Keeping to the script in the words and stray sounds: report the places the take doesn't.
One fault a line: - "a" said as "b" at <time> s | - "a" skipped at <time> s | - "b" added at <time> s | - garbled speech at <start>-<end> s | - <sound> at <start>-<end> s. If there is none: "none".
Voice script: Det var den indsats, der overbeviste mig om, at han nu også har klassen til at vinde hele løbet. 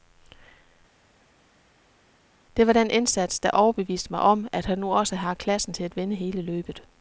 none